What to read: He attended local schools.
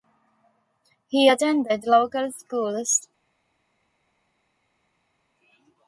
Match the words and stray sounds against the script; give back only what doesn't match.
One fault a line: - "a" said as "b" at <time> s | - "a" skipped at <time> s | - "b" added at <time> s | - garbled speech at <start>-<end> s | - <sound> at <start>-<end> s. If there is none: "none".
none